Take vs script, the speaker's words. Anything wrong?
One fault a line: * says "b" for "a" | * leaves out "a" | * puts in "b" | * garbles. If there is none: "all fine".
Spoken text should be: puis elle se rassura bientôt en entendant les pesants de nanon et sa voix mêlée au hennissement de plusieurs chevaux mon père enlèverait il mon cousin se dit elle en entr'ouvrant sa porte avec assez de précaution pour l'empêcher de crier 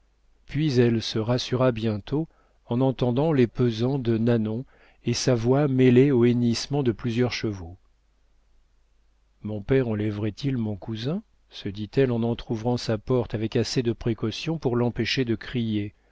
all fine